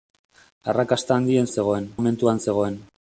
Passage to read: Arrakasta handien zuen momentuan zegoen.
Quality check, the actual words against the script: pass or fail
fail